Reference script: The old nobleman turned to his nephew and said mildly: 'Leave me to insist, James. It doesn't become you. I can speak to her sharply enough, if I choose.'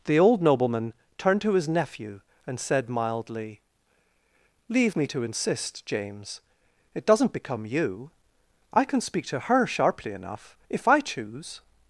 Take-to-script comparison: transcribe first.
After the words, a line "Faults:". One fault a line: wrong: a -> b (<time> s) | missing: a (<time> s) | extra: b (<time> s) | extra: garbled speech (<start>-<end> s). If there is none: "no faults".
The old nobleman turned to his nephew and said mildly: 'Leave me to insist, James. It doesn't become you. I can speak to her sharply enough, if I choose.'
Faults:
no faults